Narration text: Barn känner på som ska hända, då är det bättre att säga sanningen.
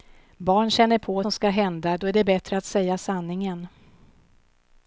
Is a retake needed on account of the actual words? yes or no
no